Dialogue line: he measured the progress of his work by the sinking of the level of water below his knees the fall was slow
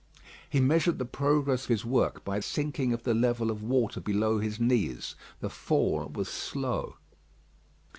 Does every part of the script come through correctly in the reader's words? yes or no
no